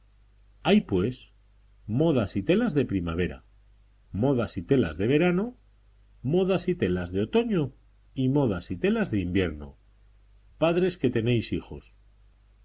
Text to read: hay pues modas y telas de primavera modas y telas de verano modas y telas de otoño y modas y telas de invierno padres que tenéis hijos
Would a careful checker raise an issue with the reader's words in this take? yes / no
no